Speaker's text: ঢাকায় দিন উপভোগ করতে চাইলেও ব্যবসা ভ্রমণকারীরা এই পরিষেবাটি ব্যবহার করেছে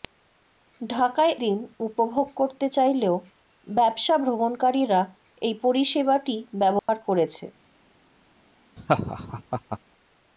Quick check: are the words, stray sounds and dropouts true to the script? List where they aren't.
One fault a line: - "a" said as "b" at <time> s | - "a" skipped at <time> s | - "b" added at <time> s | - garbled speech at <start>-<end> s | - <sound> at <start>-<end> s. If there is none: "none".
- dropout at 6.8-6.9 s
- laugh at 8.8-9.8 s